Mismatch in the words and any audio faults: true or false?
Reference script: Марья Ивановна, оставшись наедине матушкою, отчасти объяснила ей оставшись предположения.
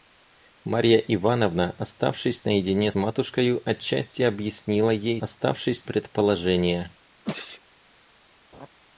true